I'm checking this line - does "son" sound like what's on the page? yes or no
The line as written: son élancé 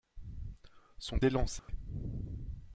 yes